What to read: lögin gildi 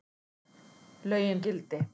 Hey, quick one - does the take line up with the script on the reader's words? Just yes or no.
yes